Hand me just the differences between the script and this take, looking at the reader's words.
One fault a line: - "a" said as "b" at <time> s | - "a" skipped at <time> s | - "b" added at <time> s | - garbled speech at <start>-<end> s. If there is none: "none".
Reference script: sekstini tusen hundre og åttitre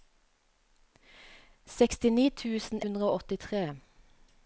none